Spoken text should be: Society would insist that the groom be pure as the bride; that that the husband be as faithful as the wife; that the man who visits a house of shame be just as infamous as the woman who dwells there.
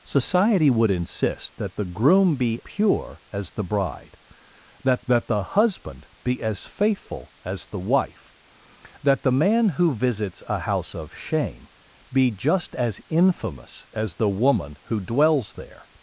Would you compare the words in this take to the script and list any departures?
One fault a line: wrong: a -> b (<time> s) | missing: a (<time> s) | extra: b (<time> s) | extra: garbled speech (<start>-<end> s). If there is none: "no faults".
no faults